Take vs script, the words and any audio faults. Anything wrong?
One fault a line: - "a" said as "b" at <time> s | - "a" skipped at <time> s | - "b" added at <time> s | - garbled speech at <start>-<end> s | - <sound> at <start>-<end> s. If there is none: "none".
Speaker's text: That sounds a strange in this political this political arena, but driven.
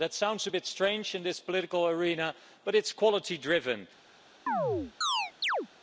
- "bit" added at 0.5 s
- "this political arena but" said as "arena but it's quality" at 1.9 s
- chirp at 4.5-5.7 s